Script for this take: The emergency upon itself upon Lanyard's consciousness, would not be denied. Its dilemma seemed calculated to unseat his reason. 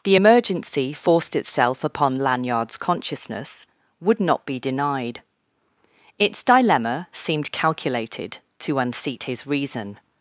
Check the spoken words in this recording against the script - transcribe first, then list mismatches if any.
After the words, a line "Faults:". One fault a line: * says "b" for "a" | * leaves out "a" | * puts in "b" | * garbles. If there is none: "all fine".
The emergency forced itself upon Lanyard's consciousness, would not be denied. Its dilemma seemed calculated to unseat his reason.
Faults:
* says "forced" for "upon"